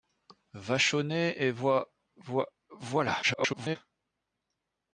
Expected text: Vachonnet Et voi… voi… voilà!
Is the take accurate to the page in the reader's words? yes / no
no